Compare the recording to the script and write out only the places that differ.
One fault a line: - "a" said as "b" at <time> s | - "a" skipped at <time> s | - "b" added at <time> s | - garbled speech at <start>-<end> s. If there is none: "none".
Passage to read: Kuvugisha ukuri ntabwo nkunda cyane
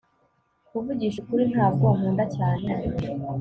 none